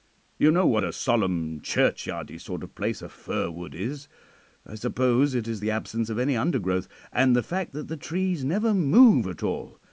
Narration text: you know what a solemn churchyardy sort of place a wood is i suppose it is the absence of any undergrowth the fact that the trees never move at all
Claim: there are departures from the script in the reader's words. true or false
true